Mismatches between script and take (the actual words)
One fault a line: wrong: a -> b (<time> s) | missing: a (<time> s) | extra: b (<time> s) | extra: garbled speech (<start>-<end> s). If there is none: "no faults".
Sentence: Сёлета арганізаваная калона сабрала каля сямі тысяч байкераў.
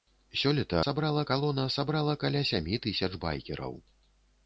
wrong: арганізаваная -> сабрала (0.9 s)